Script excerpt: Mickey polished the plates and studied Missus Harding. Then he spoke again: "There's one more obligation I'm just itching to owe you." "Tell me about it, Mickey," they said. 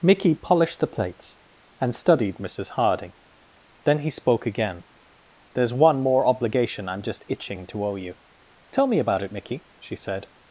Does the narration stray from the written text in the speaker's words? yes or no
yes